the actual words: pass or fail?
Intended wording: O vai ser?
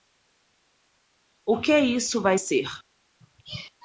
fail